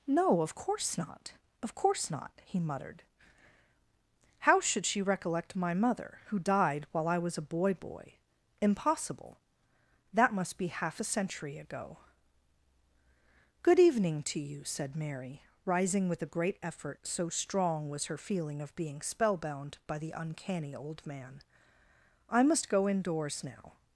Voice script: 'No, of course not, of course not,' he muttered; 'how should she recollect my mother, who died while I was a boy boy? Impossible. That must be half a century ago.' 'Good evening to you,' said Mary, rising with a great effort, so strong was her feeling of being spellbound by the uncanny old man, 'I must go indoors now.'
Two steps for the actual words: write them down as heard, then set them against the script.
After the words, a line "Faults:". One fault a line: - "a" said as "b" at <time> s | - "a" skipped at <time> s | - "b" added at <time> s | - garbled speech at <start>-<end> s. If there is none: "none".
'No, of course not, of course not,' he muttered; 'how should she recollect my mother, who died while I was a boy boy? Impossible. That must be half a century ago.' 'Good evening to you,' said Mary, rising with a great effort, so strong was her feeling of being spellbound by the uncanny old man, 'I must go indoors now.'
Faults:
none